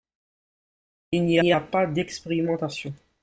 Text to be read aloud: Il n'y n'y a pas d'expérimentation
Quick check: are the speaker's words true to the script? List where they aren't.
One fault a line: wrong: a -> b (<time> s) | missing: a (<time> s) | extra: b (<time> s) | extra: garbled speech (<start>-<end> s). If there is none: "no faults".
no faults